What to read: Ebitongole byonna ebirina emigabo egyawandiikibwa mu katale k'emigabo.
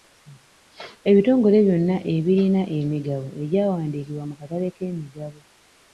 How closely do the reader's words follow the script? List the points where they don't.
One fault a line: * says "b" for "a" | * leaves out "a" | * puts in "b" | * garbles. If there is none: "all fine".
all fine